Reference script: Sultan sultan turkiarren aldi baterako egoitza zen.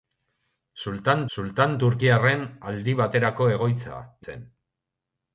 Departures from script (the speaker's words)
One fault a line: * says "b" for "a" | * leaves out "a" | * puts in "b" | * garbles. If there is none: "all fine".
all fine